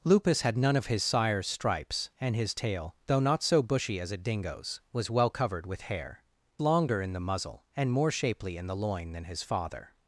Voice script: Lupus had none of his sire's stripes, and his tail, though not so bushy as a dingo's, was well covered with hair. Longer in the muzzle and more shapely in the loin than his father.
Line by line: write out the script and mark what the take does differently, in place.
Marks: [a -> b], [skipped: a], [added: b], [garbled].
Lupus had none of his sire's stripes, and his tail, though not so bushy as a dingo's, was well covered with hair. Longer in the muzzle and more shapely in the loin than his father.